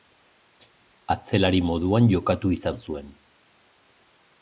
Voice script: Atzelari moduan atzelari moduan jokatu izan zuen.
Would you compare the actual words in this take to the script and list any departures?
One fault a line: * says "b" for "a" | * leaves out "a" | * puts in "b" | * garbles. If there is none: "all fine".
* leaves out "atzelari moduan"